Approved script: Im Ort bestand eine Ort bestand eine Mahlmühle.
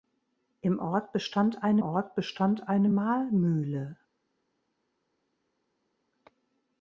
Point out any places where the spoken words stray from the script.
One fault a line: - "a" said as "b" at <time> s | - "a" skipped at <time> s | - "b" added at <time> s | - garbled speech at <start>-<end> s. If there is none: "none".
none